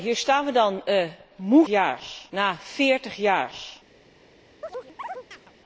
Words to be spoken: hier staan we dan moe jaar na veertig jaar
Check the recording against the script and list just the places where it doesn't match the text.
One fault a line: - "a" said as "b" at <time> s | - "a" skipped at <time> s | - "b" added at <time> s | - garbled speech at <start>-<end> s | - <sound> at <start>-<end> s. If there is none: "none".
- chirp at 4.6-5.5 s